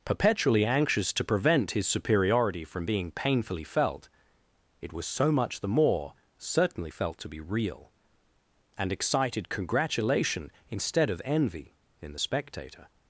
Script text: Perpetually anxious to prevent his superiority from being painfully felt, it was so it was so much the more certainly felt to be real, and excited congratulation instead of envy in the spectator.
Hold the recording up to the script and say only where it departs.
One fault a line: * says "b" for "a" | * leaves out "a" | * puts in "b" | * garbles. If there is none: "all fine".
* leaves out "it was so"